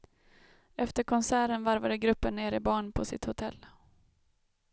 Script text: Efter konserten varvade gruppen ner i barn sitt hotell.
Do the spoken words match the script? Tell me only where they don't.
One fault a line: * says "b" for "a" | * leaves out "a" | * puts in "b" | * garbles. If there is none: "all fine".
* puts in "på"